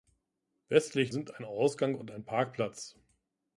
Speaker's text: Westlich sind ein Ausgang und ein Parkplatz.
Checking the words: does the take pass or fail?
pass